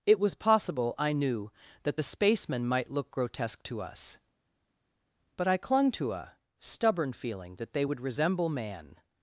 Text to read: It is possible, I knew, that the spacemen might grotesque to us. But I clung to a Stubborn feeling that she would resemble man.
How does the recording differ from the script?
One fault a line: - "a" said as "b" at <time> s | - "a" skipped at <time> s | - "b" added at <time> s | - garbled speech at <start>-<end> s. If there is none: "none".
- "is" said as "was" at 0.2 s
- "look" added at 2.9 s
- "she" said as "they" at 7.7 s